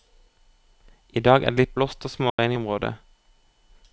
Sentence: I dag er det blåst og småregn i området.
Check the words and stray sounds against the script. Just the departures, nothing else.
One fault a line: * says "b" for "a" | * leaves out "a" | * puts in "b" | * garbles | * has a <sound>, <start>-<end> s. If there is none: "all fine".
* puts in "litt"
* has a dropout, 2.3-2.4 s